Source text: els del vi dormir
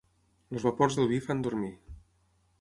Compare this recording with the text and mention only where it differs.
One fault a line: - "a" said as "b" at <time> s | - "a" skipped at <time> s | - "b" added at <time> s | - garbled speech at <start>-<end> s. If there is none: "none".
- "vapors" added at 0.7 s
- "fan" added at 1.3 s